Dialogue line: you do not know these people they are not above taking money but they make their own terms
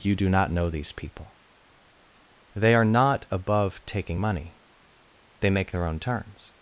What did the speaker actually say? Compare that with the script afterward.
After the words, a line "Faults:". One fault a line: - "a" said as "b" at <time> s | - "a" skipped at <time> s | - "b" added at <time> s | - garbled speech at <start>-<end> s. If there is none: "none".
you do not know these people they are not above taking money they make their own terms
Faults:
- "but" skipped at 4.6 s